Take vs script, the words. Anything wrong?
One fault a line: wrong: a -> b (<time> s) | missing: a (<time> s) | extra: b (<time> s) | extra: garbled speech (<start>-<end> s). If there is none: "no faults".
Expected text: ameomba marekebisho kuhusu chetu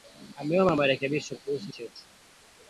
no faults